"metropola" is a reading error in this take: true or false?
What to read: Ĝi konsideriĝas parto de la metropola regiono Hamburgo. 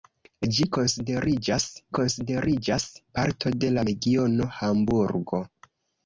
true